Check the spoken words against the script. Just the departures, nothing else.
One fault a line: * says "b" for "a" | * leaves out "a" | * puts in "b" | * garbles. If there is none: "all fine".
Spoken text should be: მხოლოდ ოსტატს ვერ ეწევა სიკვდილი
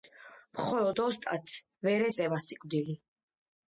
all fine